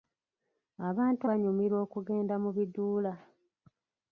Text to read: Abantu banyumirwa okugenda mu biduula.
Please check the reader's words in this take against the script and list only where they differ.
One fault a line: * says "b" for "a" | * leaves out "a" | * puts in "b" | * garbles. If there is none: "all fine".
all fine